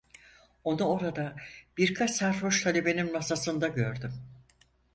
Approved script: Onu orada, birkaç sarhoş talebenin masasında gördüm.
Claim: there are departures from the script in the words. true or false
false